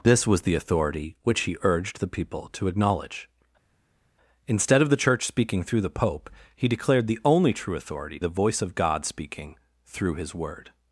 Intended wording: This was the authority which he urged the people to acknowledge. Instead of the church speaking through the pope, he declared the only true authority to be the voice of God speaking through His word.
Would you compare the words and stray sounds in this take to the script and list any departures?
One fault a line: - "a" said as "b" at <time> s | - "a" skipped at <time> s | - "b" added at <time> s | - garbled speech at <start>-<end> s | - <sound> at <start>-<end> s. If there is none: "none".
- "to be" skipped at 8.2 s